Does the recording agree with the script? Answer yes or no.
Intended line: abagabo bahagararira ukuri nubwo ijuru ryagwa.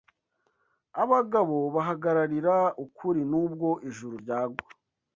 yes